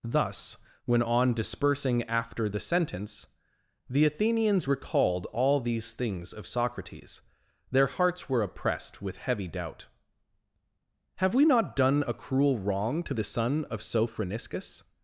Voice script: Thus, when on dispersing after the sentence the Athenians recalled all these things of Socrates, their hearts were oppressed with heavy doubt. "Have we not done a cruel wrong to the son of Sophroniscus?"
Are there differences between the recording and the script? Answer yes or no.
no